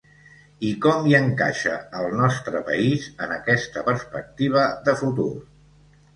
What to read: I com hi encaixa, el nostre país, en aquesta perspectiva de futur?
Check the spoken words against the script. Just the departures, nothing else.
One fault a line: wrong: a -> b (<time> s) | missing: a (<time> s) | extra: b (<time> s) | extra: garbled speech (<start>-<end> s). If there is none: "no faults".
no faults